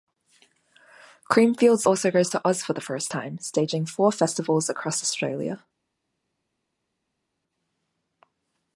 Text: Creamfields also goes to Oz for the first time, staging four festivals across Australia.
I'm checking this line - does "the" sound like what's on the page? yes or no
yes